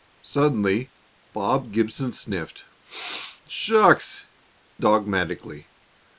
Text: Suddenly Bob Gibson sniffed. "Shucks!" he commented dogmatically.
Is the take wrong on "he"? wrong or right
wrong